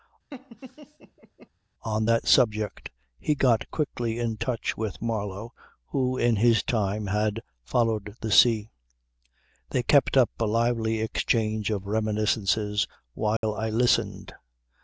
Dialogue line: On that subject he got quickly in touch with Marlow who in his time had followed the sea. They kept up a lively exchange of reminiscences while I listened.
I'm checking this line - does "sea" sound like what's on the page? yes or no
yes